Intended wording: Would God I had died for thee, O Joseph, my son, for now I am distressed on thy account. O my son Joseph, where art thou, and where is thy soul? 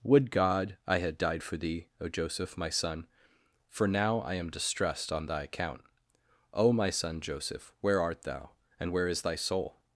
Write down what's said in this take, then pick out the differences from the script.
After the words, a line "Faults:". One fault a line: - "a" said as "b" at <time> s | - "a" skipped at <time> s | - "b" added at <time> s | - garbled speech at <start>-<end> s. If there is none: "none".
Would God I had died for thee, O Joseph, my son, for now I am distressed on thy account. O my son Joseph, where art thou, and where is thy soul?
Faults:
none